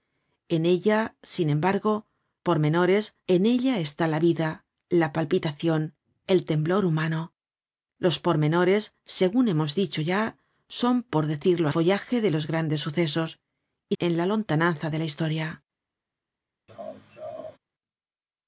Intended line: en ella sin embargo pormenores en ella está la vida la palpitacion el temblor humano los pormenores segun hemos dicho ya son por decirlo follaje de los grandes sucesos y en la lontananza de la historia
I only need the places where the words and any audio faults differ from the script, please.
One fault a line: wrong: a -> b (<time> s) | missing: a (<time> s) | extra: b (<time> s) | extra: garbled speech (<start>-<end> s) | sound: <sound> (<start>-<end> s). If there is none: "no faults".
sound: laugh (16.7-17.6 s)